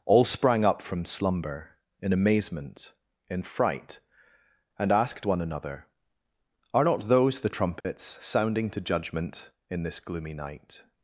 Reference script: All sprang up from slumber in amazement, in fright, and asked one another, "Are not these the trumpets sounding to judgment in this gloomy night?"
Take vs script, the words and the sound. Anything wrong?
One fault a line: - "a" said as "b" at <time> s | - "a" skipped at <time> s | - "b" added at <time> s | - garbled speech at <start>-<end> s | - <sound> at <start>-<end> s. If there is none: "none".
- "these" said as "those" at 7.1 s
- dropout at 7.8-7.8 s